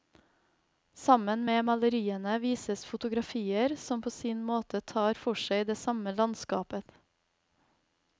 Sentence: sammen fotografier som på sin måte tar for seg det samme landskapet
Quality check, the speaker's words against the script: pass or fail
fail